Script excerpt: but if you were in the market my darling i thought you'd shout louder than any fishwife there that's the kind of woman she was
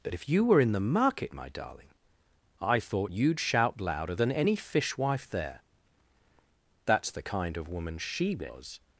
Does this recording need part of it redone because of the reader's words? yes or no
no